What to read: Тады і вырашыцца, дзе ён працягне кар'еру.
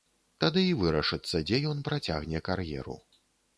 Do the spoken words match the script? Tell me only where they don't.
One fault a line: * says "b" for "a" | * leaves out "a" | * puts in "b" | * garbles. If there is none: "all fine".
all fine